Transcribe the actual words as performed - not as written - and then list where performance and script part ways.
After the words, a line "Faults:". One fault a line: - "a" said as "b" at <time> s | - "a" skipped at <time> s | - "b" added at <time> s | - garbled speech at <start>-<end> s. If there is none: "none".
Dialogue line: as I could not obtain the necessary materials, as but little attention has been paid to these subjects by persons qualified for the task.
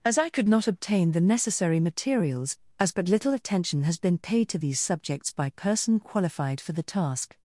as I could not obtain the necessary materials, as but little attention has been paid to these subjects by person qualified for the task.
Faults:
- "persons" said as "person" at 5.5 s